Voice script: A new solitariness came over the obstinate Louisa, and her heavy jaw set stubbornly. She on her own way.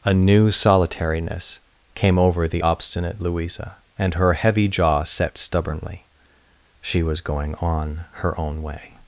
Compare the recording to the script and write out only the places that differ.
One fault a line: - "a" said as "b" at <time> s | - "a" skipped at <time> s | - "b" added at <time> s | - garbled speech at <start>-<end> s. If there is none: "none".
- "was going" added at 7.0 s